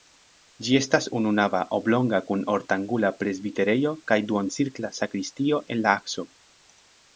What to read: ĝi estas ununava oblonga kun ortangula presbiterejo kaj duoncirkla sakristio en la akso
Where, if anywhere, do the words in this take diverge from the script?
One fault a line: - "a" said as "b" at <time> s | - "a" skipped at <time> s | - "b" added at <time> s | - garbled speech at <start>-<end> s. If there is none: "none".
none